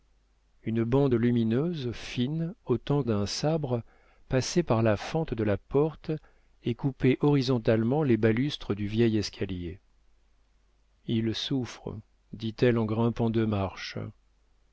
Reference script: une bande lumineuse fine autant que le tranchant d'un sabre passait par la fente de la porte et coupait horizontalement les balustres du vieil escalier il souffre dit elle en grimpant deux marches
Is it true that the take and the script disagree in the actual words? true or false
true